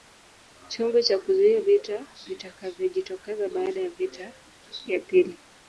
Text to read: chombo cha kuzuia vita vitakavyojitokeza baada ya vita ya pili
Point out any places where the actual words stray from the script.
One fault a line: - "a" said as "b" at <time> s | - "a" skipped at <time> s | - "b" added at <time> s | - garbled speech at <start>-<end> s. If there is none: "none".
none